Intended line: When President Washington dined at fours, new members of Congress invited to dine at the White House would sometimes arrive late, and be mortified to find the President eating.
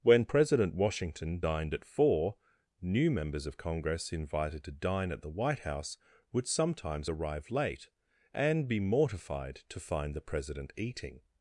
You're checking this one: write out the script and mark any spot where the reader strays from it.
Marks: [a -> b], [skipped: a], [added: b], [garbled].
When President Washington dined at [fours, -> four] new members of Congress invited to dine at the White House would sometimes arrive late, and be mortified to find the President eating.